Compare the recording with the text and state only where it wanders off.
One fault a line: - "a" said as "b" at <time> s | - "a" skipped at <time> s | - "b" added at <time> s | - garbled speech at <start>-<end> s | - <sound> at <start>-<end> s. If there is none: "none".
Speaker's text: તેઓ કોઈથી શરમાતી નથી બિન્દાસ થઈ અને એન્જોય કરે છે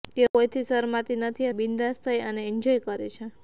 none